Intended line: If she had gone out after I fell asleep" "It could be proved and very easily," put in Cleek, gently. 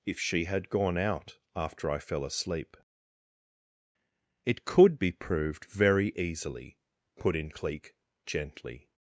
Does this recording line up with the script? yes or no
no